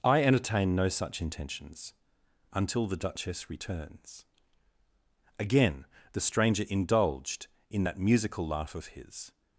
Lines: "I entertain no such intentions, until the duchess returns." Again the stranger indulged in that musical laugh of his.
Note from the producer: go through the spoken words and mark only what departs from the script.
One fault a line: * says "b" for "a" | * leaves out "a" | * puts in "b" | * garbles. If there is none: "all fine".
all fine